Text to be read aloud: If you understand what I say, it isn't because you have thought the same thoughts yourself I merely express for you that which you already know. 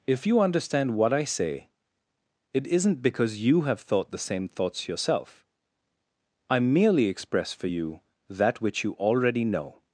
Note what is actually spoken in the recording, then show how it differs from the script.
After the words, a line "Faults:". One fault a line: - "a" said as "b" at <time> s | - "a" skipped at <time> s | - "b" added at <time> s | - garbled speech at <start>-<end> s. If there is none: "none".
If you understand what I say, it isn't because you have thought the same thoughts yourself I merely express for you that which you already know.
Faults:
none